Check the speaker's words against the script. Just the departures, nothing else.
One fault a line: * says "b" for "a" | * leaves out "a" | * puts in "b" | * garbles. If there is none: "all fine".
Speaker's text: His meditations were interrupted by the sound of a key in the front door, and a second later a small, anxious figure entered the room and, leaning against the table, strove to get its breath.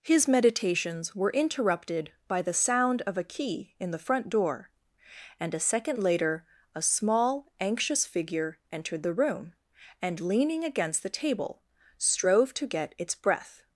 all fine